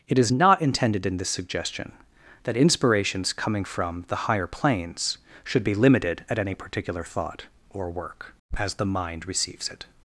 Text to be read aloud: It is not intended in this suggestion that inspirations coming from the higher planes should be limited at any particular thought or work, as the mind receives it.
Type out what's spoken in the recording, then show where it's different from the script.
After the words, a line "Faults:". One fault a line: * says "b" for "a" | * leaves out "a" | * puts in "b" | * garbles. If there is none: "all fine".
It is not intended in this suggestion that inspirations coming from the higher planes should be limited at any particular thought or work, as the mind receives it.
Faults:
all fine